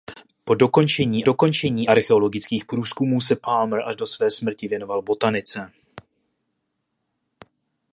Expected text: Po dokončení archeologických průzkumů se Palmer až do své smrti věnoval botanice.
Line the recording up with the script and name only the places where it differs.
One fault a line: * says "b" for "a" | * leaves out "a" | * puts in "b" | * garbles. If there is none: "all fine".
* puts in "dokončení"